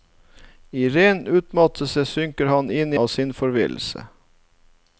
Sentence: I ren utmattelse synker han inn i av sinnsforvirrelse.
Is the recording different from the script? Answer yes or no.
no